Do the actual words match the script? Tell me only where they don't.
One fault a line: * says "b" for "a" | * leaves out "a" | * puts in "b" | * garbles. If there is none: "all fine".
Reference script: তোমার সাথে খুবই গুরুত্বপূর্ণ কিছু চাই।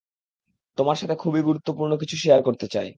* puts in "শেয়ার করতে"